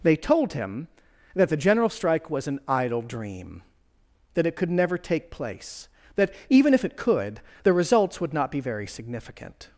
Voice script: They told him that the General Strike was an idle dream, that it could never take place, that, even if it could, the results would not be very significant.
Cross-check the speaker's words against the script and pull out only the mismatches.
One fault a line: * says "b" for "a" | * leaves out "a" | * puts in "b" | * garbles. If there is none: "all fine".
all fine